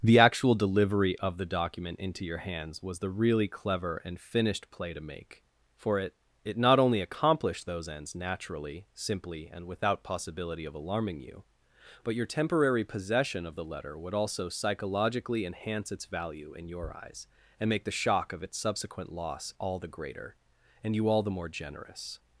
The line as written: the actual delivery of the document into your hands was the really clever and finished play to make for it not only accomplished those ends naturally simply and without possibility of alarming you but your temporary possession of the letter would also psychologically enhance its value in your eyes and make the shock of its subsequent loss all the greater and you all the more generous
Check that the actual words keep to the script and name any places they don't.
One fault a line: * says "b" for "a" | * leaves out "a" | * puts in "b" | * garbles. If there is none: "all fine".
* puts in "it"